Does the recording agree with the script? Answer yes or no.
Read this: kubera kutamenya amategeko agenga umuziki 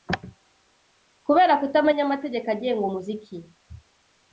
yes